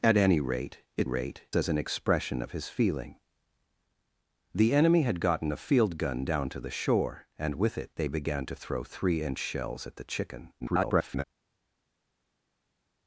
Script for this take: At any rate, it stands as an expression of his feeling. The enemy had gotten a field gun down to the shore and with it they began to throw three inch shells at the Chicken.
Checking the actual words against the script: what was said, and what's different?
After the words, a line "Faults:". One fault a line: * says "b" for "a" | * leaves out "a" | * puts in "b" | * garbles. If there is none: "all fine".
At any rate, it rate as an expression of his feeling. The enemy had gotten a field gun down to the shore and with it they began to throw three inch shells at the Chicken. [garbled]
Faults:
* says "rate" for "stands"
* garbles